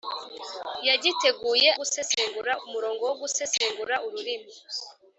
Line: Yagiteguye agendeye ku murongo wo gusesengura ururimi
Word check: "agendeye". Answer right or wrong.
wrong